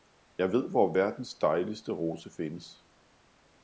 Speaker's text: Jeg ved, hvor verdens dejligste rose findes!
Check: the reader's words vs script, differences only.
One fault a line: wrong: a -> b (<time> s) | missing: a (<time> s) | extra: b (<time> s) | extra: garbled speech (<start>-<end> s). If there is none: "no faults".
no faults